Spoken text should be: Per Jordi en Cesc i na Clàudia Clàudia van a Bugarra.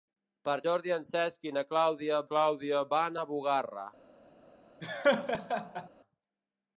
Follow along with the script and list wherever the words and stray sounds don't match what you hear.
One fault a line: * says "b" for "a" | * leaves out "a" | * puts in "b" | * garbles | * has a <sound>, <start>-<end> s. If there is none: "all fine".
* has a laugh, 4.8-5.9 s